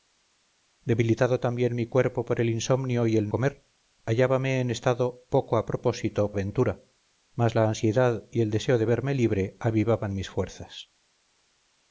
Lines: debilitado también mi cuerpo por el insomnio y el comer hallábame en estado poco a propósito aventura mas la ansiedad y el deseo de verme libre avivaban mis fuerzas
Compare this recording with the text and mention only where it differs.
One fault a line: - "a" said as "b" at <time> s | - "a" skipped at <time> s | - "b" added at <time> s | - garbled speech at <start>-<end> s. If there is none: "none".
none